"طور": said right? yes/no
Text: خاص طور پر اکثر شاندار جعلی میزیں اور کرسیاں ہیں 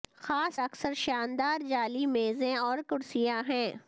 no